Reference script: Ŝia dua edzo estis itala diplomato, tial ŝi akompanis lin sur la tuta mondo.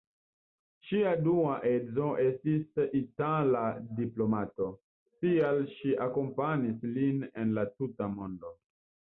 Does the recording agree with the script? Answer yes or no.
no